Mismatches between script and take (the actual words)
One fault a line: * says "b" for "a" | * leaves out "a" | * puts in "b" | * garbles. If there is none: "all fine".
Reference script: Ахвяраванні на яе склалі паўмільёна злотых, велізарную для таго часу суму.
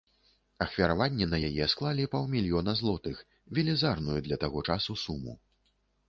all fine